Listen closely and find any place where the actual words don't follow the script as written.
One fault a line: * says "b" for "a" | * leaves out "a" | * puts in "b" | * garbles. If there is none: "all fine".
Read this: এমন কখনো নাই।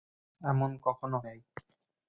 all fine